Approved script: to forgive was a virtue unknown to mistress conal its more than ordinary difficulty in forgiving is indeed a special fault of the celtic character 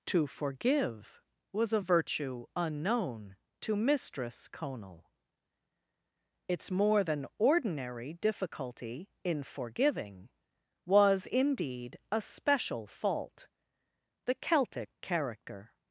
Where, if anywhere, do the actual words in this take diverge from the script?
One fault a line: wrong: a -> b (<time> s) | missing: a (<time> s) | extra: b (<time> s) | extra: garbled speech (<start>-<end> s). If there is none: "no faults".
wrong: is -> was (10.8 s)
missing: of (13.5 s)